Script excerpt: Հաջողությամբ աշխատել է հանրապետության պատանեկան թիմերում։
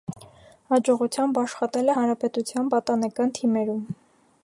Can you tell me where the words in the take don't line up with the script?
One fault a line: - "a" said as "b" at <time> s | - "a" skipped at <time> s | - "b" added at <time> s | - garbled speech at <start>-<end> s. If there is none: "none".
none